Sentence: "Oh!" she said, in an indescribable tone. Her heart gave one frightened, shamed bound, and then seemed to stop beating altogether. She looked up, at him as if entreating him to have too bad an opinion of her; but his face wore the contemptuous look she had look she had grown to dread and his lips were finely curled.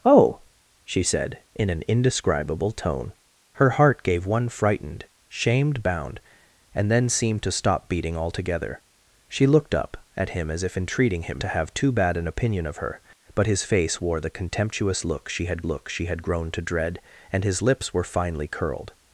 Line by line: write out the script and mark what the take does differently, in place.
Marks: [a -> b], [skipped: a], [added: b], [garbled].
"Oh!" she said, in an indescribable tone. Her heart gave one frightened, shamed bound, and then seemed to stop beating altogether. She looked up, at him as if entreating him to have too bad an opinion of her; but his face wore the contemptuous look she had look she had grown to dread and his lips were finely curled.